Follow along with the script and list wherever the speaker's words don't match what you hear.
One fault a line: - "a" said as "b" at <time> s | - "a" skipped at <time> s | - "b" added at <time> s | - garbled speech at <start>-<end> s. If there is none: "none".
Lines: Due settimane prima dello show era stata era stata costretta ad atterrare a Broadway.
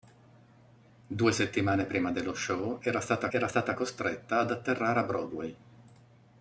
none